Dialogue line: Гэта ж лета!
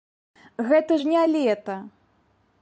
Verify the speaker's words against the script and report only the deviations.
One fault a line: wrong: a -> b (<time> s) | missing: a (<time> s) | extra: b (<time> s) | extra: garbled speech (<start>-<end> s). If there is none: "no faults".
extra: не (1.1 s)